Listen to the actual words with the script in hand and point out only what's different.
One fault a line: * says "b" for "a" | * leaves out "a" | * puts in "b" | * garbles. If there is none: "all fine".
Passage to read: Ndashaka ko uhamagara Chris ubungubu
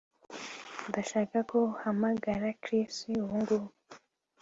all fine